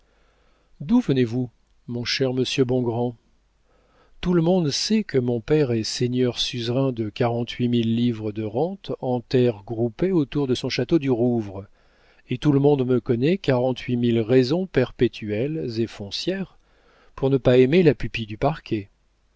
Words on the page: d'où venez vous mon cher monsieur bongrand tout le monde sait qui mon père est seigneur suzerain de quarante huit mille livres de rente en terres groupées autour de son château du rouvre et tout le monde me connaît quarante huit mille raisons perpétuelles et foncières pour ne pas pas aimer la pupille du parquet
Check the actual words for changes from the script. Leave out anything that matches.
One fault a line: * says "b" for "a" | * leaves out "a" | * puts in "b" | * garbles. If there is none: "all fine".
* says "que" for "qui"
* leaves out "pas"